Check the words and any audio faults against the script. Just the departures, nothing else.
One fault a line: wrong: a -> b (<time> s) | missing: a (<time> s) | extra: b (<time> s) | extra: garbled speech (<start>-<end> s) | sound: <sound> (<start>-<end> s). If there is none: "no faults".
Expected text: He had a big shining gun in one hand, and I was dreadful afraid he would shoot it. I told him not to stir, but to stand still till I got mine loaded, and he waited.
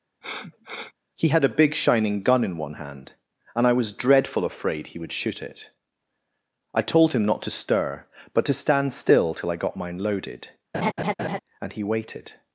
sound: sniff (0.2-0.9 s)
sound: laugh (10.7-11.4 s)